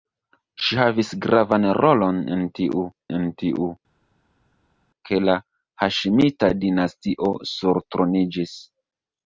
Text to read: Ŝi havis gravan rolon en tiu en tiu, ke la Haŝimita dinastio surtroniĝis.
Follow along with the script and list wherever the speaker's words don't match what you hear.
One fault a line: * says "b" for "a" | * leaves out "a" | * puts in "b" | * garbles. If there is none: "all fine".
all fine